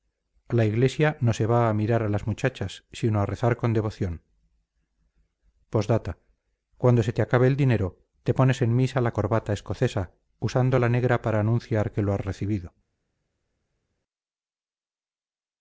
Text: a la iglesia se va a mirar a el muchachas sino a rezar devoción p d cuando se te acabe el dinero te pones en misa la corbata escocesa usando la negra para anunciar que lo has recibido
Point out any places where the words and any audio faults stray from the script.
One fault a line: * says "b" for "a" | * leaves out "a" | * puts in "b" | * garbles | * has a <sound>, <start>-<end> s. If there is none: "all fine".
* puts in "no"
* says "las" for "el"
* puts in "con"